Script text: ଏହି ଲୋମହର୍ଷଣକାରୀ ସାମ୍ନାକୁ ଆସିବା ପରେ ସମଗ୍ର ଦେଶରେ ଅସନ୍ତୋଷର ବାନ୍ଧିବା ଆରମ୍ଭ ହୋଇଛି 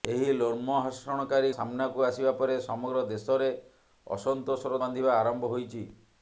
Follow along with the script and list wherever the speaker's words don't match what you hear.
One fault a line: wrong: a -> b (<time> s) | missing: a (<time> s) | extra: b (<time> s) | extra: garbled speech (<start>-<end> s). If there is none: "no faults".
no faults